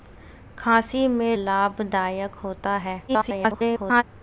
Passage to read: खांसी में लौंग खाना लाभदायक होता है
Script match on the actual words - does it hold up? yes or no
no